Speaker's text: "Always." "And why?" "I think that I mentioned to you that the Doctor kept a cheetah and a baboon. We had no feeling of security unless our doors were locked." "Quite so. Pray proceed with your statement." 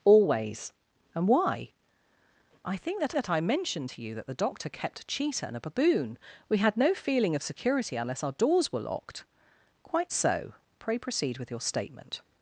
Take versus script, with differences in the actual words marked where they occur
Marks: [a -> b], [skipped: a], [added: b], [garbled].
"Always." "And why?" "I think that [added: that] I mentioned to you that the Doctor kept a cheetah and a baboon. We had no feeling of security unless our doors were locked." "Quite so. Pray proceed with your statement."